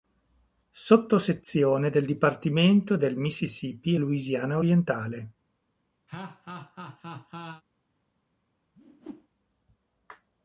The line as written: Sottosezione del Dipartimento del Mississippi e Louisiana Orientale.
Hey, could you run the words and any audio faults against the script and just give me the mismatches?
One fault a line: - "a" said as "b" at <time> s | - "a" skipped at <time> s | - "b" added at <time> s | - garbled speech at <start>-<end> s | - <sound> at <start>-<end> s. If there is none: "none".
- laugh at 6.1-7.6 s
- whoosh at 8.7-9.3 s